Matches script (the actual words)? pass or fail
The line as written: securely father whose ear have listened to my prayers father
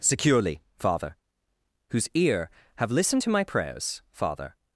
pass